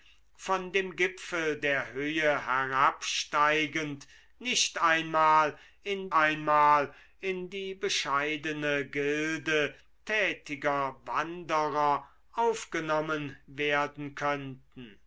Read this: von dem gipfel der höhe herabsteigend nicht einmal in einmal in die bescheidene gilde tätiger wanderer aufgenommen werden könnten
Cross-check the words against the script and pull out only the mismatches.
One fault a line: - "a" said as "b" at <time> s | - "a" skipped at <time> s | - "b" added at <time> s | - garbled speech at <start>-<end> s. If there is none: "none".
none